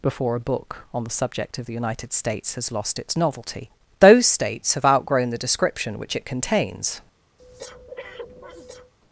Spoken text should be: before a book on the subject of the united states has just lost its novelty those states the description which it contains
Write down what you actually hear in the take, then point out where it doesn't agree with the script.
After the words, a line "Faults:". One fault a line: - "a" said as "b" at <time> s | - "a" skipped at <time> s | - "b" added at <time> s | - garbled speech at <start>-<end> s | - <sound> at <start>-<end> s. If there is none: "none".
before a book on the subject of the united states has lost its novelty those states have outgrown the description which it contains
Faults:
- "just" skipped at 2.7 s
- "have outgrown" added at 4.7 s
- breath at 7.4-8.9 s